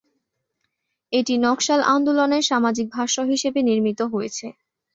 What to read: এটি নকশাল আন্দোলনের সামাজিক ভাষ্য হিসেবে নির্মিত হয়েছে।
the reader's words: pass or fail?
pass